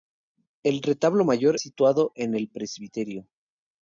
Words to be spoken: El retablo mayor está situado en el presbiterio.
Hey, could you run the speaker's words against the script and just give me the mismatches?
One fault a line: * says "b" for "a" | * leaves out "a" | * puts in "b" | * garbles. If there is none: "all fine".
* leaves out "está"